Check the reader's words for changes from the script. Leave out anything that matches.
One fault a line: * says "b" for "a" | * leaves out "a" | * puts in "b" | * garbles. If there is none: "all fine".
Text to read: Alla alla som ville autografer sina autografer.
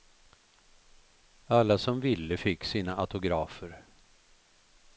* leaves out "alla"
* says "fick" for "autografer"